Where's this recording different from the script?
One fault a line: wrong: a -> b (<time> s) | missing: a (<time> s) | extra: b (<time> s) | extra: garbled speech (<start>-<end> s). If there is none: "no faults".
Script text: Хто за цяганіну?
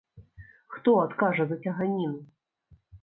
extra: адкажа (1.0 s)